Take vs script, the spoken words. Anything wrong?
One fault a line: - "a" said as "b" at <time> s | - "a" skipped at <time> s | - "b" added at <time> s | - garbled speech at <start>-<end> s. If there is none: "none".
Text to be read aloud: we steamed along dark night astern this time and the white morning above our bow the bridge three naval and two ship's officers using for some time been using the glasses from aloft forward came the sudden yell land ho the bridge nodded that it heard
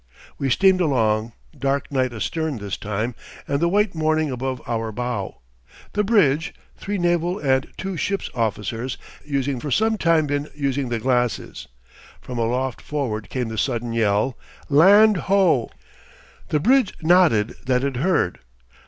none